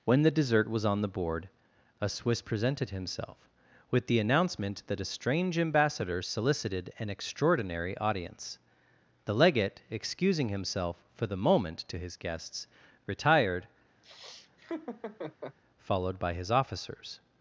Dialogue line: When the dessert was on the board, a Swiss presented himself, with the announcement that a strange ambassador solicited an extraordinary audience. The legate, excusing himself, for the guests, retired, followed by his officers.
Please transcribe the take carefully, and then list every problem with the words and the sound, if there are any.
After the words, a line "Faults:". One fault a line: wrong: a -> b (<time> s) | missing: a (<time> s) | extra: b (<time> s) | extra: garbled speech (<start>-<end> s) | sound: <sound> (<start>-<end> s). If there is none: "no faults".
When the dessert was on the board, a Swiss presented himself, with the announcement that a strange ambassador solicited an extraordinary audience. The legate, excusing himself, for the moment, to his guests, retired, followed by his officers.
Faults:
extra: moment to his (11.4 s)
sound: laugh (14.0-15.6 s)